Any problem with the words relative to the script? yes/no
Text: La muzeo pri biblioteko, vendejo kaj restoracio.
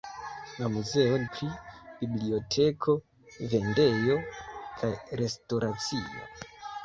no